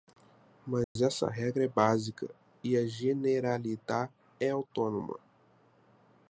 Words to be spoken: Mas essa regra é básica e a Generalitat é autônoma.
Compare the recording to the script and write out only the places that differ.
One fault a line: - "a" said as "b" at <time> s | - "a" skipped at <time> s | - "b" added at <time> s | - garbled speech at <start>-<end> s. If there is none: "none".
none